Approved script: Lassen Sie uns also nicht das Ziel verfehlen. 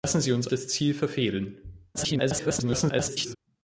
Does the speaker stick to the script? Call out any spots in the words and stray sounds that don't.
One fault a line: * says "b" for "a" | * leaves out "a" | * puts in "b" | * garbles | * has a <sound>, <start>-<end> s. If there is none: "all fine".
* leaves out "also nicht"
* garbles